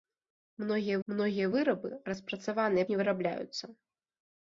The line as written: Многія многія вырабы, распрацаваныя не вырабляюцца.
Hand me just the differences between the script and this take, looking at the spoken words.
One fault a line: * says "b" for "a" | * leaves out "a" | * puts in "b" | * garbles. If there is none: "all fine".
all fine